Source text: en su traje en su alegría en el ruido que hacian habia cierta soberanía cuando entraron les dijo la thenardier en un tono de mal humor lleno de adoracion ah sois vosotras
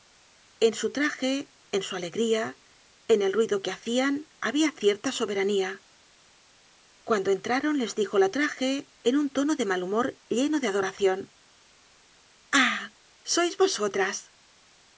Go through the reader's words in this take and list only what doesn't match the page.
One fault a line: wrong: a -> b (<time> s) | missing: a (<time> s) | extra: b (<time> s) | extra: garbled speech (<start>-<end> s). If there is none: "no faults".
wrong: thenardier -> traje (8.3 s)